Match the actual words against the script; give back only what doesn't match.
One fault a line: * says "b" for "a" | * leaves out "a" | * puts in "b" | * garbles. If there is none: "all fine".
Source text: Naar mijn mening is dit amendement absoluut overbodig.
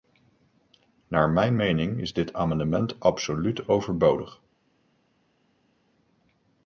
all fine